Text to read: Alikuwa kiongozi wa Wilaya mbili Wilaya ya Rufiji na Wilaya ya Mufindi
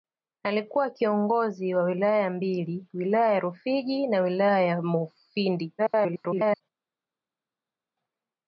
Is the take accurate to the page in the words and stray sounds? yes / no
no